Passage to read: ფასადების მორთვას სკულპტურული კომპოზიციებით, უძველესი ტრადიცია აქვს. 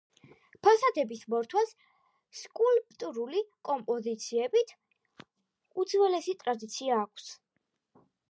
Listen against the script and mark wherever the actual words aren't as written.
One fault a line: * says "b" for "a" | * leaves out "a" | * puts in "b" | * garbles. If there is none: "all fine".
all fine